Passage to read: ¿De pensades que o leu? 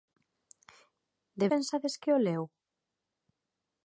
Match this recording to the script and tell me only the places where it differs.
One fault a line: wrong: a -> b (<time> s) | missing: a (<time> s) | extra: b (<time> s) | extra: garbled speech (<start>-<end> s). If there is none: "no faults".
no faults